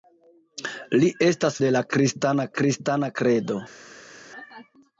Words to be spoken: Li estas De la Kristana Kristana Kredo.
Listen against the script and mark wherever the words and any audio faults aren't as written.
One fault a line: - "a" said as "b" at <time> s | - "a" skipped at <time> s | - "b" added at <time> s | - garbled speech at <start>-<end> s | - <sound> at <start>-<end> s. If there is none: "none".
none